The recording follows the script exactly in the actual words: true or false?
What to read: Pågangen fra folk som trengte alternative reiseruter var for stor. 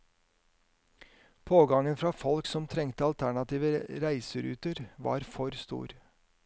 true